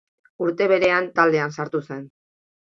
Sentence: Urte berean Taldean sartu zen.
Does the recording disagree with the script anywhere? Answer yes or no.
no